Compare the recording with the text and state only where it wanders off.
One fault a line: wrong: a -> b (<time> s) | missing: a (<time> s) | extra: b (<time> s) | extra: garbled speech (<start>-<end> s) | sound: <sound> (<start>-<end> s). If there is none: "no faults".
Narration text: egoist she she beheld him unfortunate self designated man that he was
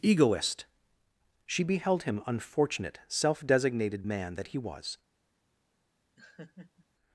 missing: she (1.6 s)
sound: laugh (6.2-6.9 s)